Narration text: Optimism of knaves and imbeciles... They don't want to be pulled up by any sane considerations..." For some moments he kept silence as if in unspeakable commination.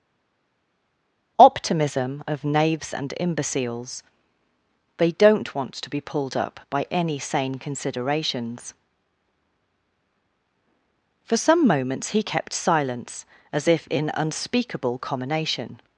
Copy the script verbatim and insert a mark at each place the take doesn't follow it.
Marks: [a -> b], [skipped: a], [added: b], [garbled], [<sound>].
Optimism of knaves and imbeciles... They don't want to be pulled up by any sane considerations..." For some moments he kept silence as if in unspeakable commination.